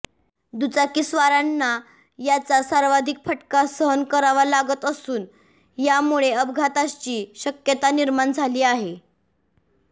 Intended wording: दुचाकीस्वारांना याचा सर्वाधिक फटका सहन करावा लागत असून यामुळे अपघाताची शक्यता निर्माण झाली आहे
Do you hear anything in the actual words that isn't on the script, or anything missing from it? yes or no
no